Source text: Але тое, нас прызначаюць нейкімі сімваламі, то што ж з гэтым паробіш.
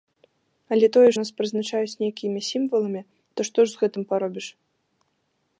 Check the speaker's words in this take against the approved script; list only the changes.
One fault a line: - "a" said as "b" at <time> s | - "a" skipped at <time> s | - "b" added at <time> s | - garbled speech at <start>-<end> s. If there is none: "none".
none